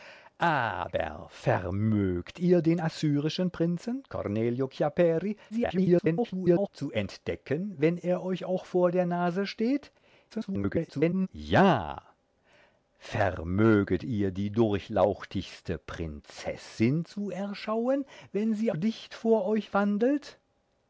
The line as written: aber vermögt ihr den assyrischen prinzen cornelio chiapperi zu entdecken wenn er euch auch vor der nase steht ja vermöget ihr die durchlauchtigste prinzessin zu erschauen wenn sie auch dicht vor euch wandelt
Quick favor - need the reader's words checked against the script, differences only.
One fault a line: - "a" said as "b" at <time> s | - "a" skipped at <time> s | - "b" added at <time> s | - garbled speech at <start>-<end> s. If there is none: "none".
- garbled speech at 5.5-6.7 s
- garbled speech at 10.3-11.3 s
- "auch" skipped at 18.7 s